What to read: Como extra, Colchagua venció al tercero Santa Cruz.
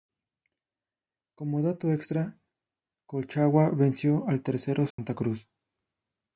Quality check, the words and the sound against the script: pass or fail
fail